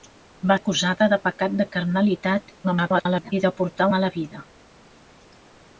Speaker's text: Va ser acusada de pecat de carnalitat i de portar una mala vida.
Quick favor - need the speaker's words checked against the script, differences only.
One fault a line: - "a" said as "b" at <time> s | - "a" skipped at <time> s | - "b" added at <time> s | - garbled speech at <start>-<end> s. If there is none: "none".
- "ser" skipped at 0.6 s
- garbled speech at 2.6-3.3 s
- "una" skipped at 3.9 s